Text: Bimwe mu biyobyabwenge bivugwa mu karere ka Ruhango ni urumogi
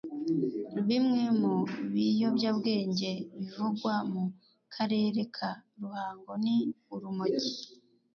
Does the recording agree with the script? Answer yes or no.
yes